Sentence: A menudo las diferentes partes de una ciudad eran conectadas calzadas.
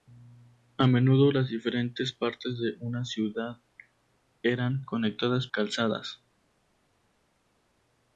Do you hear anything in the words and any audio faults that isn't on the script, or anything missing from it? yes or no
no